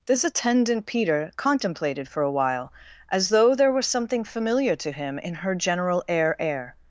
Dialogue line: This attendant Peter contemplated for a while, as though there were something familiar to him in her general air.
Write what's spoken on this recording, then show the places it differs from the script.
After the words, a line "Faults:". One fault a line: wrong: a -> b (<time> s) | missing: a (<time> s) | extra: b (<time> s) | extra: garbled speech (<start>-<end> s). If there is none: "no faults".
This attendant Peter contemplated for a while, as though there were something familiar to him in her general air air.
Faults:
extra: air (6.4 s)